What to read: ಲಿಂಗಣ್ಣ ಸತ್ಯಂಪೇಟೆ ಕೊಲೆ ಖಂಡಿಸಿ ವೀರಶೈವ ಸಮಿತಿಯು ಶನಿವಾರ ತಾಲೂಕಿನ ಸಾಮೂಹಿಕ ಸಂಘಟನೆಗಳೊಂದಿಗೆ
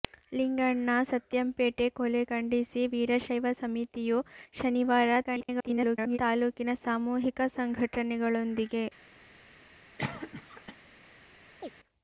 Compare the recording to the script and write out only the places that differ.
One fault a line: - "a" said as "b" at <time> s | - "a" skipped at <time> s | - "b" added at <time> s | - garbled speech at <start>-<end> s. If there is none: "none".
- garbled speech at 5.2-6.2 s